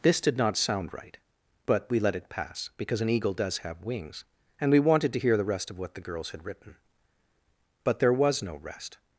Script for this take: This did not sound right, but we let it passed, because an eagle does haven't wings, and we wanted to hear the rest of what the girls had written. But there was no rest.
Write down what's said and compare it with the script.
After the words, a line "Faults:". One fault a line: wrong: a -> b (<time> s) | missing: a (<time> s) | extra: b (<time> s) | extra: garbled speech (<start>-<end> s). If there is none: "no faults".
This did not sound right, but we let it pass, because an eagle does have wings, and we wanted to hear the rest of what the girls had written. But there was no rest.
Faults:
wrong: passed -> pass (2.3 s)
wrong: haven't -> have (3.6 s)